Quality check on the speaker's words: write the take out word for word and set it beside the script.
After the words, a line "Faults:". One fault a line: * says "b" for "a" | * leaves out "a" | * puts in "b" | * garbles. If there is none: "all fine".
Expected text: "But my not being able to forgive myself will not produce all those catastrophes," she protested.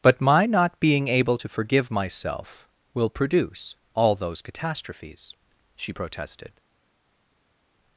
"But my not being able to forgive myself will produce all those catastrophes," she protested.
Faults:
* leaves out "not"